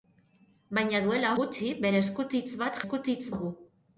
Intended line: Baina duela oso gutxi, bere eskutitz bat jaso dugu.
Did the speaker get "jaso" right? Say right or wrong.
wrong